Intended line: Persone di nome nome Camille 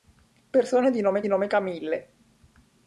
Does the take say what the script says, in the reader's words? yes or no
yes